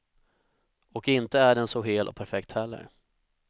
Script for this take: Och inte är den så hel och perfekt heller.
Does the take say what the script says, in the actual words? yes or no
yes